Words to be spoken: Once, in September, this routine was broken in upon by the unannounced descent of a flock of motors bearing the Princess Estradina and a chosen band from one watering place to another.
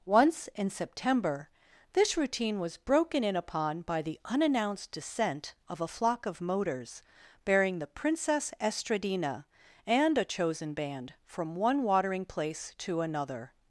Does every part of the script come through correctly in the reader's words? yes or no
yes